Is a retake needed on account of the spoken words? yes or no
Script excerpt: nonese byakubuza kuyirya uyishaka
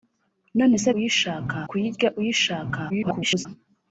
yes